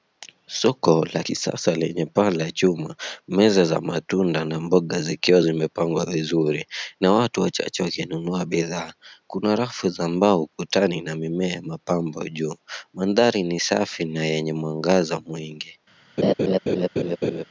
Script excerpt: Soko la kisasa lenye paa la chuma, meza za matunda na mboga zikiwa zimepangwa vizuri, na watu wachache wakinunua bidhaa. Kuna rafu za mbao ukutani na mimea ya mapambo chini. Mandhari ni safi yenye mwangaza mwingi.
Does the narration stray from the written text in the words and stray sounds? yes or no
yes